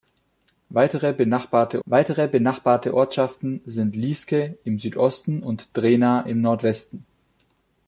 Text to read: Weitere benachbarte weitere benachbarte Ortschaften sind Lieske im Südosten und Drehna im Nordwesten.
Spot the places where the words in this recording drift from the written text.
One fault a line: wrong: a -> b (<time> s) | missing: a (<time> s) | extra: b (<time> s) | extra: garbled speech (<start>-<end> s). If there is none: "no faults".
no faults